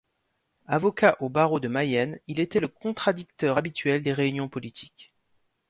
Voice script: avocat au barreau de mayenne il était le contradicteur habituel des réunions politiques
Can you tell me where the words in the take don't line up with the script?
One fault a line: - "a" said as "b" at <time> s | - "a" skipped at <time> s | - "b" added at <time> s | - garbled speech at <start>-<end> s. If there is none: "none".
none